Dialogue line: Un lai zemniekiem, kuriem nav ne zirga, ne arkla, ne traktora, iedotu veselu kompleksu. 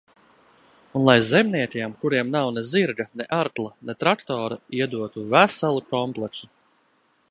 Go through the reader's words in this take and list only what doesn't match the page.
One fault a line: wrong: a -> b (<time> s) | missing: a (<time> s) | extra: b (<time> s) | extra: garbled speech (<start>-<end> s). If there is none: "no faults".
no faults